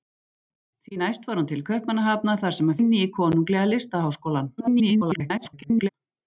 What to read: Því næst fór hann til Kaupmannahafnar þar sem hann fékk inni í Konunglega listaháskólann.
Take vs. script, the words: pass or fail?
fail